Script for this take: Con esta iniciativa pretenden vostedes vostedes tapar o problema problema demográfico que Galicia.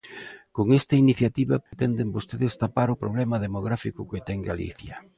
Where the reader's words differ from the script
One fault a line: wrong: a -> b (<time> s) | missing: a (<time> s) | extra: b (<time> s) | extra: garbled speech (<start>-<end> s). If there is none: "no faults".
missing: vostedes (2.6 s)
missing: problema (3.4 s)
extra: ten (4.2 s)